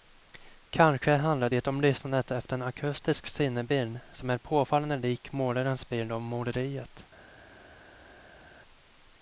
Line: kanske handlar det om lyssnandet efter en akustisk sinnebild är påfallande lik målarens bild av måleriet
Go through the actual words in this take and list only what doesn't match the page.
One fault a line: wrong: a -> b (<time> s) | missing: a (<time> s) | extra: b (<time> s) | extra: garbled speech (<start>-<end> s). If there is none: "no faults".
extra: som (4.1 s)